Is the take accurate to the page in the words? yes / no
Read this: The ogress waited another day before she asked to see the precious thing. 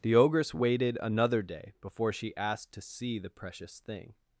yes